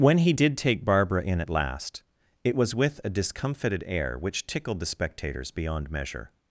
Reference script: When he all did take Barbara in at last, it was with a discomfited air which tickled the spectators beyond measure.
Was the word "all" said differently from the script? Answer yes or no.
yes